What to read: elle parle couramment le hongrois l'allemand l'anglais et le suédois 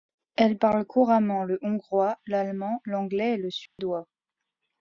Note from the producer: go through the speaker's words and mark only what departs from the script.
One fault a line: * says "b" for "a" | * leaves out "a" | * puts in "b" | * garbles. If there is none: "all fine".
all fine